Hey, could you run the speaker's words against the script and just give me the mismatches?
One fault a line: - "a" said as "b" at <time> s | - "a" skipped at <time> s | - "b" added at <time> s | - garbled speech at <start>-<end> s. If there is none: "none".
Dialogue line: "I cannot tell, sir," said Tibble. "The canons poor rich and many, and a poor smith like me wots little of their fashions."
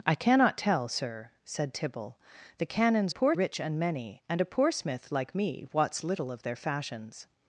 none